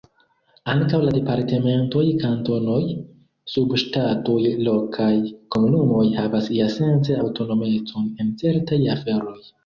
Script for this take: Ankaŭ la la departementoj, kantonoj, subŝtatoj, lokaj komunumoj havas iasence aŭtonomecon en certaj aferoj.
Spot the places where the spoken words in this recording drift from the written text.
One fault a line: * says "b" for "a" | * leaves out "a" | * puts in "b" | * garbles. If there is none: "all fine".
* leaves out "la"